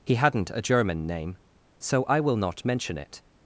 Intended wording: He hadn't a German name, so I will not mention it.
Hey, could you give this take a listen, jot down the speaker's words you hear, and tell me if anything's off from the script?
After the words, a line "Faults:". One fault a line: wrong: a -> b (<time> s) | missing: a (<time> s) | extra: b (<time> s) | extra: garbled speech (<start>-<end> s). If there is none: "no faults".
He hadn't a German name, so I will not mention it.
Faults:
no faults